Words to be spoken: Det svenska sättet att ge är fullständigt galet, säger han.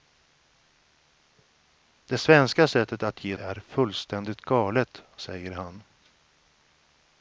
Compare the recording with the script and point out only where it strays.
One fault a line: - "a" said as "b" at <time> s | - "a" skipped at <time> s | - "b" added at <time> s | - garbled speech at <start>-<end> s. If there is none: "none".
none